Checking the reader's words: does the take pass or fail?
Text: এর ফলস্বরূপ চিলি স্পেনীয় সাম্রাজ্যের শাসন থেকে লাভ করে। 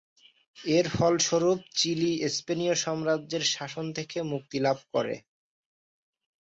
fail